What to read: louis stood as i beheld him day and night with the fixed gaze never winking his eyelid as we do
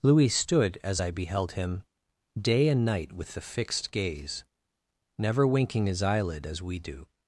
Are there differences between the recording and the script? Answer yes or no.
no